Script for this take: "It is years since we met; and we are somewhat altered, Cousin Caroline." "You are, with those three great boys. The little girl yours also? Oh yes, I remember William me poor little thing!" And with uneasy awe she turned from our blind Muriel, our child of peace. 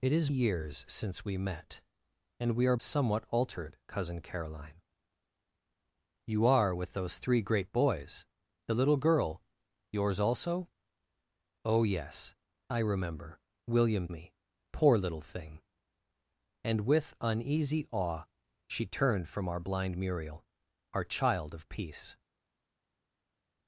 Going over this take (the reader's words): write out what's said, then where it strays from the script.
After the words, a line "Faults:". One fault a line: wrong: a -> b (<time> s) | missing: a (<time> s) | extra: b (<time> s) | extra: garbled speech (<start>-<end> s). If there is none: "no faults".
"It is years since we met; and we are somewhat altered, Cousin Caroline." "You are, with those three great boys. The little girl yours also? Oh yes, I remember William me poor little thing!" And with uneasy awe she turned from our blind Muriel, our child of peace.
Faults:
no faults